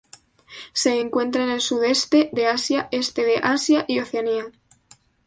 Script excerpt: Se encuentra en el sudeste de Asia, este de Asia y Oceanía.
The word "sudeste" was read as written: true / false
true